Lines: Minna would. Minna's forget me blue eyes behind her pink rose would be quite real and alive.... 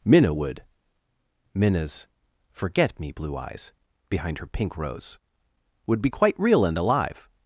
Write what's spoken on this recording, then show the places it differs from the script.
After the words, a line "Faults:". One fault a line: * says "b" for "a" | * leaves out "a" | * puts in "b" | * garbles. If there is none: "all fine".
Minna would. Minna's forget me blue eyes behind her pink rose would be quite real and alive....
Faults:
all fine